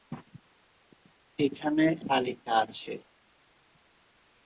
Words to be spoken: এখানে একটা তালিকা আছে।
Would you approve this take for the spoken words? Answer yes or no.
no